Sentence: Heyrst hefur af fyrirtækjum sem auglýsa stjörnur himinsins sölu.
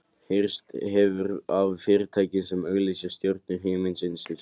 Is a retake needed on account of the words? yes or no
no